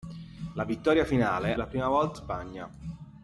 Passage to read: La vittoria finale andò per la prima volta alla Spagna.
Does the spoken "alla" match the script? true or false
false